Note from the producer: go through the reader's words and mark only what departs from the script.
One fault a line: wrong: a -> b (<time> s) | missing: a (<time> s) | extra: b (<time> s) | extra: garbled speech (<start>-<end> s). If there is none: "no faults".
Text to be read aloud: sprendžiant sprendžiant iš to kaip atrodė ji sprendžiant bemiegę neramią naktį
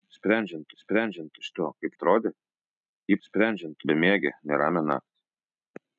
no faults